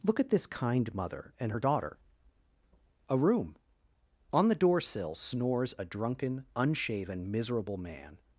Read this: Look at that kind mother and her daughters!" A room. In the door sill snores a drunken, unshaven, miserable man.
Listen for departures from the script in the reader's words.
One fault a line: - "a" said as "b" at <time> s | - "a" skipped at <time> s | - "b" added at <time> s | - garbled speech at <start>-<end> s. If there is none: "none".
- "that" said as "this" at 0.3 s
- "daughters" said as "daughter" at 1.6 s
- "In" said as "On" at 4.3 s